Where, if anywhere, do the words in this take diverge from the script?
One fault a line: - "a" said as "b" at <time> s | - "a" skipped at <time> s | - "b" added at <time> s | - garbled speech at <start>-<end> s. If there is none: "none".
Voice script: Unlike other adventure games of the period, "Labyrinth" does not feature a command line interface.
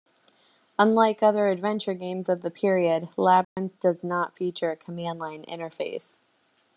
none